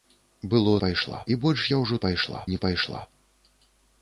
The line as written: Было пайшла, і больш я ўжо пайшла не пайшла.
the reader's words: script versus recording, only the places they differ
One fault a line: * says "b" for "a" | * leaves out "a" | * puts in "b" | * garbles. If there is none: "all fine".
all fine